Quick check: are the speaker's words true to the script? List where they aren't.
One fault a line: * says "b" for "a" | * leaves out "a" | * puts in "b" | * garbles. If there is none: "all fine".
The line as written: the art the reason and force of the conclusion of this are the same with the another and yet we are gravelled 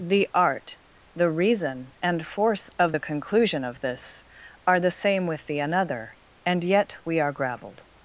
all fine